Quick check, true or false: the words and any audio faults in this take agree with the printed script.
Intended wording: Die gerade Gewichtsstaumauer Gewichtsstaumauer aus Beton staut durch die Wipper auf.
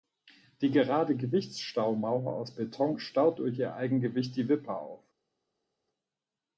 false